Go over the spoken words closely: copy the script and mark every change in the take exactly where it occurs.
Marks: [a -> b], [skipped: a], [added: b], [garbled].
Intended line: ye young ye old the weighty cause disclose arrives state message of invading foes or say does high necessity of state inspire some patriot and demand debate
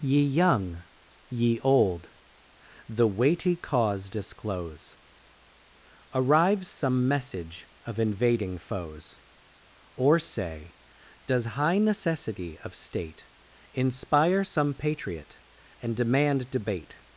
ye young ye old the weighty cause disclose arrives [state -> some] message of invading foes or say does high necessity of state inspire some patriot and demand debate